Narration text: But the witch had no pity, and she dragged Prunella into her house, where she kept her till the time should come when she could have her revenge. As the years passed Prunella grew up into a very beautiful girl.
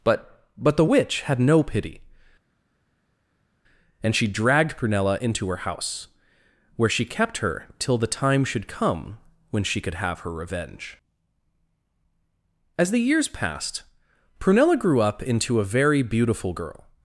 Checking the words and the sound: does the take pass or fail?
fail